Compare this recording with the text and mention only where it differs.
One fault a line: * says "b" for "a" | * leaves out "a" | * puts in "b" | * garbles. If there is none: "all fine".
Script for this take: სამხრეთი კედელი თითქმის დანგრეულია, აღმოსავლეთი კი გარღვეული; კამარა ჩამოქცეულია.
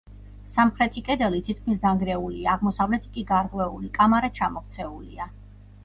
all fine